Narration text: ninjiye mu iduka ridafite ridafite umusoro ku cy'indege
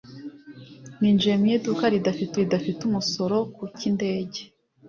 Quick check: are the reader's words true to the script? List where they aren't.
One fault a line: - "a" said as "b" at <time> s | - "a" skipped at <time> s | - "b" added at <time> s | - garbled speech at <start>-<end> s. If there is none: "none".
none